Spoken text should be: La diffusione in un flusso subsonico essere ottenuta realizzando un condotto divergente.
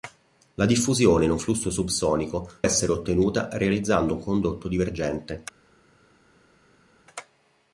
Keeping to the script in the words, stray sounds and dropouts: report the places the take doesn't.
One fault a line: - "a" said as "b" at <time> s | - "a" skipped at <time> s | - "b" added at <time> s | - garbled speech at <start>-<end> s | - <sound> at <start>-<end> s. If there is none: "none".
none